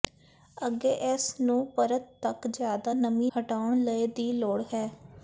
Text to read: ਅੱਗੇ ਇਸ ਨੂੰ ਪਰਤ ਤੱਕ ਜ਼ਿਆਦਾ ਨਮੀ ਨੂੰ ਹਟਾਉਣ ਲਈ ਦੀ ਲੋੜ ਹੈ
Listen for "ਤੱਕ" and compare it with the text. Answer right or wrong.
right